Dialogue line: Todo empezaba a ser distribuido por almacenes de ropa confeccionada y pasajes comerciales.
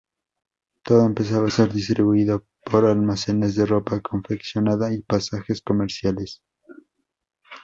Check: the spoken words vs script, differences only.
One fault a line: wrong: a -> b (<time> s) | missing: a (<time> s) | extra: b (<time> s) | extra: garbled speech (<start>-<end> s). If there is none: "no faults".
no faults